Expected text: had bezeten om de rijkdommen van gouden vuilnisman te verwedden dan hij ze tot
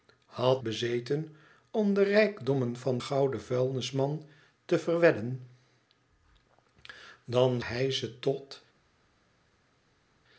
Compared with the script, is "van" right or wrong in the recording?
right